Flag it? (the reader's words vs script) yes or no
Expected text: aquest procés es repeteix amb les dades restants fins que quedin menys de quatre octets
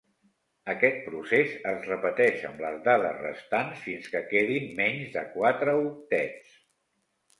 no